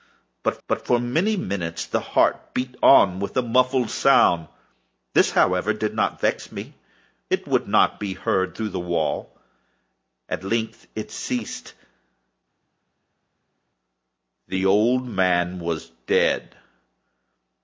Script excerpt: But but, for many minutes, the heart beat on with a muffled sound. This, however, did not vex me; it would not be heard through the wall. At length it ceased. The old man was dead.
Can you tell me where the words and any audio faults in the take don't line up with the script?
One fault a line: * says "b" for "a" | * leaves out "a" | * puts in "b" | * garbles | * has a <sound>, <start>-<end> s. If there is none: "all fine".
all fine